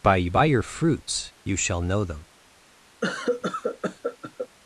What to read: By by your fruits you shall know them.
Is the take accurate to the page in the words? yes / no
yes